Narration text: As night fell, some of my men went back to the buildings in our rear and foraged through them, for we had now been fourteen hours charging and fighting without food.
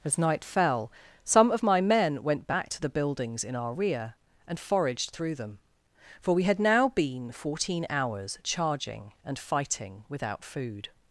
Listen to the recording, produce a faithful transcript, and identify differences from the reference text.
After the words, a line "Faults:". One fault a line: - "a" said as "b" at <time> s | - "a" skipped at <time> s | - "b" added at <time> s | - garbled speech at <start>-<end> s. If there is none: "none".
As night fell, some of my men went back to the buildings in our rear and foraged through them, for we had now been fourteen hours charging and fighting without food.
Faults:
none